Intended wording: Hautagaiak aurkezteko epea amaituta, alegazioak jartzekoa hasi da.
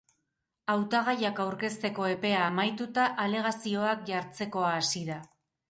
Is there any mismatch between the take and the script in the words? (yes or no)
no